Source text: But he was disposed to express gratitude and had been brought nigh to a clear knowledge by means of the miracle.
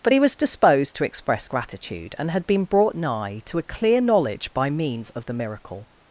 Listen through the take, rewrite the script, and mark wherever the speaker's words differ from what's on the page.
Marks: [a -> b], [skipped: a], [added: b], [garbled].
But he was disposed to express gratitude and had been brought nigh to a clear knowledge by means of the miracle.